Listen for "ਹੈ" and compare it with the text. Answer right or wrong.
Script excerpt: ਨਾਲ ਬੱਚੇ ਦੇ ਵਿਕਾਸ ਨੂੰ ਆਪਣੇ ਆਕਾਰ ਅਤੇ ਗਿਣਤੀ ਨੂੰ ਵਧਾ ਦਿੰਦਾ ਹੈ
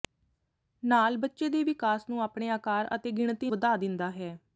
right